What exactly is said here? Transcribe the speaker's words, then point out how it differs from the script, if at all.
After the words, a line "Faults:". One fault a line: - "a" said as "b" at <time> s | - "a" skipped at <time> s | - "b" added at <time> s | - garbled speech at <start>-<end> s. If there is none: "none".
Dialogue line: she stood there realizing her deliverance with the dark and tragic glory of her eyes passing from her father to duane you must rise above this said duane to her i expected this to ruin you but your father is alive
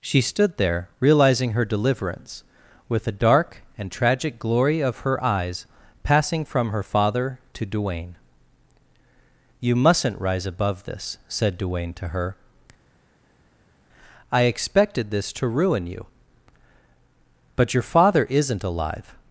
she stood there realizing her deliverance with the dark and tragic glory of her eyes passing from her father to duane you mustn't rise above this said duane to her i expected this to ruin you but your father isn't alive
Faults:
- "must" said as "mustn't" at 9.8 s
- "is" said as "isn't" at 18.2 s